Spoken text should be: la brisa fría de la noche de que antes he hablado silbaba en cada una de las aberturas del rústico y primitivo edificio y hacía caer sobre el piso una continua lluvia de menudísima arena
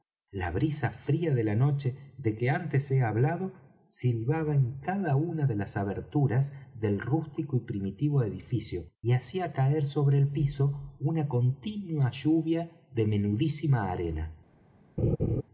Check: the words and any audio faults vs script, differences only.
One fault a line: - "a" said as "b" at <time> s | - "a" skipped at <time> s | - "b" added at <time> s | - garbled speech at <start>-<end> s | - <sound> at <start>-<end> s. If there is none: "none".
- laugh at 15.0-15.4 s